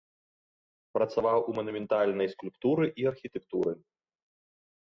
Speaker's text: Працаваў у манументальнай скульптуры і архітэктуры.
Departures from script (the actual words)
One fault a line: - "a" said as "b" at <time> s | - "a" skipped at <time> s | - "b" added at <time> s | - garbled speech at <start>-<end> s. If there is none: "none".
none